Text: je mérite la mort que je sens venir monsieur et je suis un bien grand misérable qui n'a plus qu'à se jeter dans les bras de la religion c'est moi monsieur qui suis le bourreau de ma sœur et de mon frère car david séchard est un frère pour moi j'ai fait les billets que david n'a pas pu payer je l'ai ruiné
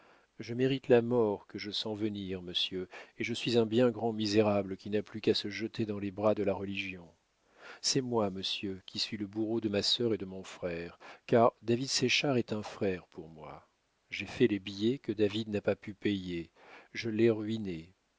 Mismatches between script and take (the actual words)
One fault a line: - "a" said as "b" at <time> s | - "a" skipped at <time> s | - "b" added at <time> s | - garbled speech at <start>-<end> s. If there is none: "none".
none